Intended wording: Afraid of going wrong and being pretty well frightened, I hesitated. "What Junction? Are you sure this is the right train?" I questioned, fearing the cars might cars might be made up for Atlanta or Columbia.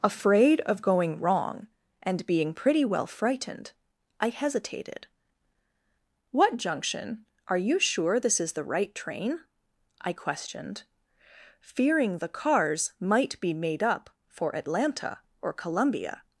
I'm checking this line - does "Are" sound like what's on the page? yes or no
yes